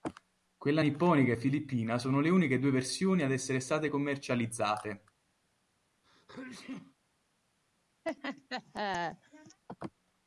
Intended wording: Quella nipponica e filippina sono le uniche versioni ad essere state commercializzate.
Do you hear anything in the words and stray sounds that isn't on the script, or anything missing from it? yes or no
yes